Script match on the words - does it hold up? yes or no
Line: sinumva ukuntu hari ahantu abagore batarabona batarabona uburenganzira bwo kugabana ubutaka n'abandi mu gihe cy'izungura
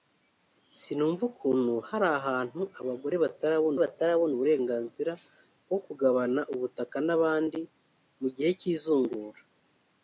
yes